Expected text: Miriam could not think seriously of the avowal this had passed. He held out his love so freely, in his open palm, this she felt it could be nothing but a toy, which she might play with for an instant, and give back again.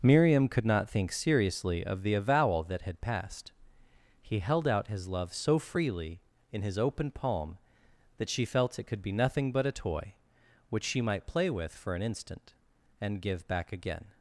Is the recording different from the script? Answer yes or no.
yes